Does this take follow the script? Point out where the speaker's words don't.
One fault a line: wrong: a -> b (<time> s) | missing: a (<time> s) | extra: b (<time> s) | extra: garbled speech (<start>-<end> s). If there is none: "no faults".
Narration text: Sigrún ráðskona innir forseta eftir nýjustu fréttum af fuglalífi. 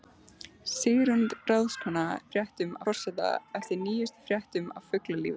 wrong: innir -> fréttum (2.4 s)